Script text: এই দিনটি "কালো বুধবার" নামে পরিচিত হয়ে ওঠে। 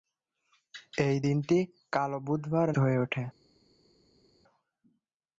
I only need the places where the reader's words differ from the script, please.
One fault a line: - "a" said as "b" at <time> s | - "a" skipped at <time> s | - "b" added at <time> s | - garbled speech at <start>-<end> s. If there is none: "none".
- "নামে পরিচিত" skipped at 2.7 s